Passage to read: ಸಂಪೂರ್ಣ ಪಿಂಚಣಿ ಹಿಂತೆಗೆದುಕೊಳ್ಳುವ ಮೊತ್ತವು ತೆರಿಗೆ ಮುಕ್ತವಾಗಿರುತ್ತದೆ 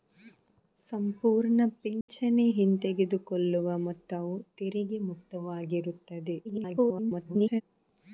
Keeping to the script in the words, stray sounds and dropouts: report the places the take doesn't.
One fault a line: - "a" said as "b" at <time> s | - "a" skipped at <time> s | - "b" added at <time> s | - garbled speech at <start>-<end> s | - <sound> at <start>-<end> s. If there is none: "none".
- dropout at 2.0-2.1 s
- garbled speech at 6.4-7.6 s